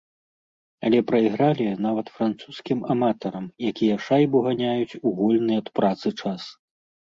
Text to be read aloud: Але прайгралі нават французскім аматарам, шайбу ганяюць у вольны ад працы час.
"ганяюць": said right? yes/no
yes